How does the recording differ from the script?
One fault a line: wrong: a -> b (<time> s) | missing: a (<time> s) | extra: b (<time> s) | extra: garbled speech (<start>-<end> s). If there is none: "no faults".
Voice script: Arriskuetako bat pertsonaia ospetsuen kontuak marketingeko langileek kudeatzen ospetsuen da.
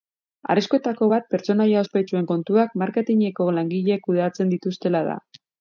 wrong: ospetsuen -> dituztela (4.6 s)